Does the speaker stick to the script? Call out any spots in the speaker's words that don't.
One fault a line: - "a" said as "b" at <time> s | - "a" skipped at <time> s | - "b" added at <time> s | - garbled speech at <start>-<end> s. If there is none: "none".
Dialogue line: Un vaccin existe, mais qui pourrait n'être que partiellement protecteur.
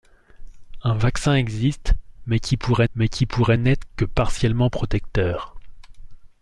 - "mais qui pourrait" added at 2.9 s